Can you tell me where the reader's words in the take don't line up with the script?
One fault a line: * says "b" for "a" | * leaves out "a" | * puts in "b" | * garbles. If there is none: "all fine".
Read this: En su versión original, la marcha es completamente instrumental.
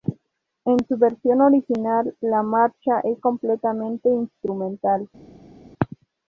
all fine